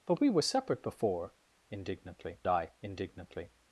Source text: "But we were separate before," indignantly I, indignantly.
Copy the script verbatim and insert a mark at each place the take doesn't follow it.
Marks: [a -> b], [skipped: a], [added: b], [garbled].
"But we were separate before," indignantly I, indignantly.